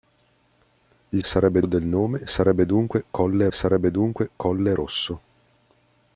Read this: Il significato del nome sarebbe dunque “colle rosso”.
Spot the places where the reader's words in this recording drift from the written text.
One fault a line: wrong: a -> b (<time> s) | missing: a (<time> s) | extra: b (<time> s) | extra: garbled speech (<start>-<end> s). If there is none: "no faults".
wrong: significato -> sarebbe (1.2 s)
extra: sarebbe dunque colle (3.5 s)